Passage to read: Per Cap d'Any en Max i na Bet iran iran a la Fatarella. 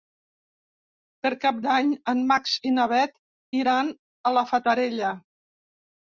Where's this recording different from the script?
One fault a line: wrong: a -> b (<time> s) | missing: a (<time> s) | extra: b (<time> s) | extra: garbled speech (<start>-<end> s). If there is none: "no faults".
missing: iran (3.9 s)